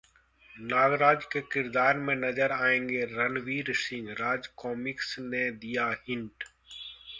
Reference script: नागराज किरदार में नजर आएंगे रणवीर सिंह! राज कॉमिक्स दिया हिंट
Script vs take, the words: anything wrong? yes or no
yes